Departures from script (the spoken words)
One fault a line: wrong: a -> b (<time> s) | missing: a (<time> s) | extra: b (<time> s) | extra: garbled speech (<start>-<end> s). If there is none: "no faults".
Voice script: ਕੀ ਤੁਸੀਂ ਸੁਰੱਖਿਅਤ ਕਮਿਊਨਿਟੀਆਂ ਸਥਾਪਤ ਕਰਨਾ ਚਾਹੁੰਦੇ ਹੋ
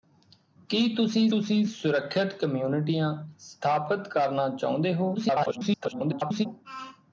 extra: ਤੁਸੀਂ (1.3 s)
extra: garbled speech (5.1-6.5 s)